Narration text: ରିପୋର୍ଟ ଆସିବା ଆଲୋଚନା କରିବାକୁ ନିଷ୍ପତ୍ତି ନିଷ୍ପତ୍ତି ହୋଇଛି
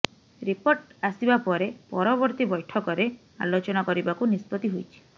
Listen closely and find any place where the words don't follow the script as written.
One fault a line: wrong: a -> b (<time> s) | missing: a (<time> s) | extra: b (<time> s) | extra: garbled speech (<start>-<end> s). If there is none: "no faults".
extra: ପରେ ପରବର୍ତ୍ତୀ ବୈଠକରେ (1.4 s)
missing: ନିଷ୍ପତ୍ତି (4.8 s)